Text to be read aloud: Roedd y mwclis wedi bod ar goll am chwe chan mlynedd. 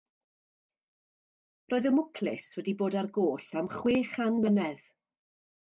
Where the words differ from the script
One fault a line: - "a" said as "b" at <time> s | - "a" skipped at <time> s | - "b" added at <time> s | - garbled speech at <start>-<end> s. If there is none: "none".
none